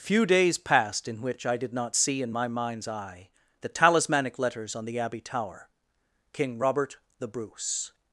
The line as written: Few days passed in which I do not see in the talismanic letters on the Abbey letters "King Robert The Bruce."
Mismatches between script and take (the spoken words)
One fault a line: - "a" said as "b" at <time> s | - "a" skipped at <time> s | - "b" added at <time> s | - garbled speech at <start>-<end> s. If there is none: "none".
- "do" said as "did" at 1.6 s
- "my mind's eye" added at 2.3 s
- "letters" said as "tower" at 5.2 s